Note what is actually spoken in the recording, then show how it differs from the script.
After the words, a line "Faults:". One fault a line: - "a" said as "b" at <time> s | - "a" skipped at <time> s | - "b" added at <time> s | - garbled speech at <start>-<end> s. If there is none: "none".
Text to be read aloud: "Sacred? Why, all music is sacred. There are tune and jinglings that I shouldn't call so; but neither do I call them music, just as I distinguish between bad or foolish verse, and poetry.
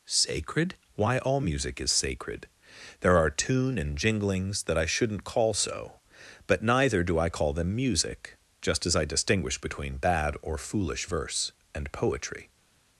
"Sacred? Why, all music is sacred. There are tune and jinglings that I shouldn't call so; but neither do I call them music, just as I distinguish between bad or foolish verse, and poetry.
Faults:
none